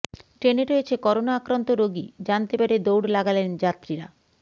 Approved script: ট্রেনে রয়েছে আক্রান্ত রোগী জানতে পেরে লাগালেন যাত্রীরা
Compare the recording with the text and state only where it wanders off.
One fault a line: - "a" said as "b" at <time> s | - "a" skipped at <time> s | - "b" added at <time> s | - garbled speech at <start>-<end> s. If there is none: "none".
- "করোনা" added at 1.0 s
- "দৌড়" added at 2.8 s